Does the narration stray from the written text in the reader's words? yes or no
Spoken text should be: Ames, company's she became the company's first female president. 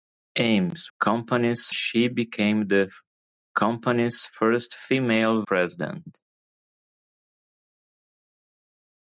no